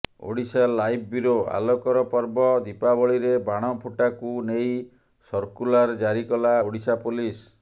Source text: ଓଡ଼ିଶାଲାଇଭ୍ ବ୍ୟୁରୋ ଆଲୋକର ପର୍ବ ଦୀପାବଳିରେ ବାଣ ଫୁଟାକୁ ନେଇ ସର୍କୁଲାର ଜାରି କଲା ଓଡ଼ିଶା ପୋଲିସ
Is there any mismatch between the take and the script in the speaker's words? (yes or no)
no